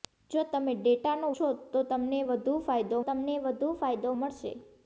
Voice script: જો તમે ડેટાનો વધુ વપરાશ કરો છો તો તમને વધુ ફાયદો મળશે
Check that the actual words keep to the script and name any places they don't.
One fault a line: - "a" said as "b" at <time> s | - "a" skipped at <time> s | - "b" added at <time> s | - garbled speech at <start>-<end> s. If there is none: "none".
- "વધુ વપરાશ કરો છો તો" said as "છો તો તમને વધુ ફાયદો" at 1.3 s